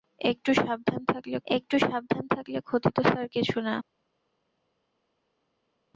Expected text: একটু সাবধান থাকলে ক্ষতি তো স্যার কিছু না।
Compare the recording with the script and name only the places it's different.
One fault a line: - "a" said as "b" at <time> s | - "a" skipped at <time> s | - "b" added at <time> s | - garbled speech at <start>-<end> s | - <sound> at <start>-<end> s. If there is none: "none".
- "একটু সাবধান থাকলে" added at 1.5 s